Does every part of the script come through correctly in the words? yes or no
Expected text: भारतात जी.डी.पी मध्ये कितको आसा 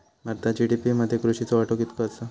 no